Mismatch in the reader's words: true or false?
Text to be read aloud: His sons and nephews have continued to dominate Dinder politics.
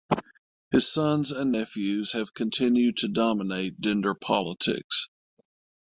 false